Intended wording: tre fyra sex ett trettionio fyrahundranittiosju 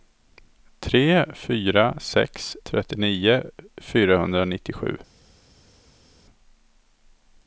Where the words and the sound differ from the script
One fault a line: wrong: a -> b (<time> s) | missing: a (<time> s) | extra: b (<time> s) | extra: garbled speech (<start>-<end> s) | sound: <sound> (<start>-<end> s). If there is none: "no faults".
missing: ett (2.6 s)